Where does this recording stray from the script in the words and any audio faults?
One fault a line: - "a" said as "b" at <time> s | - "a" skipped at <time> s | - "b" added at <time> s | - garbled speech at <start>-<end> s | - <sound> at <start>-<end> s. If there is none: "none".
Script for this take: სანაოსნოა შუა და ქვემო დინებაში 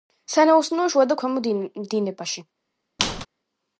- squeak at 3.0-3.3 s